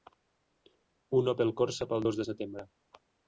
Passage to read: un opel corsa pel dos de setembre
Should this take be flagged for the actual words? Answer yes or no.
no